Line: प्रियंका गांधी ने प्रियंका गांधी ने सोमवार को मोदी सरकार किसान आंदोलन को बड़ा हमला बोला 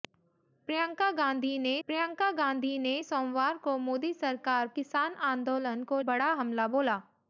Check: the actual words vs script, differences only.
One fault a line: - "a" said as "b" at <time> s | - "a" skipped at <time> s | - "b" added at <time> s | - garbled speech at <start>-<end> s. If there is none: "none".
none